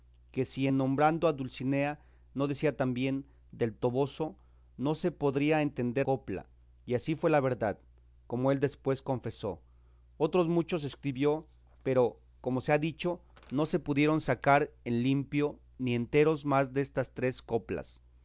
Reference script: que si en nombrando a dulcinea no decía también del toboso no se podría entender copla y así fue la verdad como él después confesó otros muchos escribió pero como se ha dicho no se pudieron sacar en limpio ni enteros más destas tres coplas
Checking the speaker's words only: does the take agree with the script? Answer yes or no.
yes